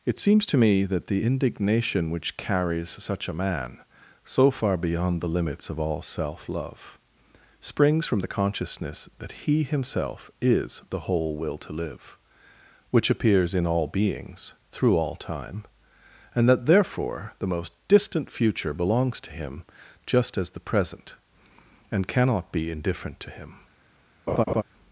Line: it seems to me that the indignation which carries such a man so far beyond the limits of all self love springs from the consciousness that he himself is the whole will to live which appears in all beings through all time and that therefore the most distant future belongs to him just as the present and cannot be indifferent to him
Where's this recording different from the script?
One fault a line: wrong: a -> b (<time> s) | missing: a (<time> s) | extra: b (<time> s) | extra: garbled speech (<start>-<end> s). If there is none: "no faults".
no faults